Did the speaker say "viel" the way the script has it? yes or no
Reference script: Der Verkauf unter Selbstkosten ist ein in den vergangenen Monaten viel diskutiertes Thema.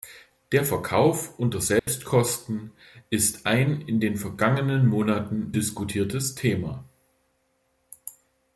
no